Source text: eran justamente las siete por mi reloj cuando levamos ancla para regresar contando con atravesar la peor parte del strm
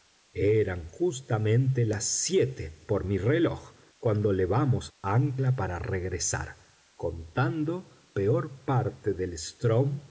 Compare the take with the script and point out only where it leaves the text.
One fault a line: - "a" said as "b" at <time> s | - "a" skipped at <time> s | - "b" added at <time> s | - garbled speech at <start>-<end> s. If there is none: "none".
- "con atravesar la" skipped at 8.1 s